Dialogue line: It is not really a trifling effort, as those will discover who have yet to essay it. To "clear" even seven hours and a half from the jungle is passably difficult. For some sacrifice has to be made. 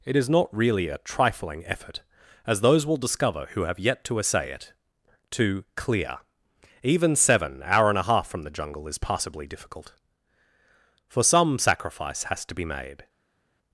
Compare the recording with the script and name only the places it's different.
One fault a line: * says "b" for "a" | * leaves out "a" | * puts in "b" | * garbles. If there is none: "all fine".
* says "hour" for "hours"